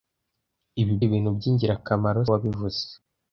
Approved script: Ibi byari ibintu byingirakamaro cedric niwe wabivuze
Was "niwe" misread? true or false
true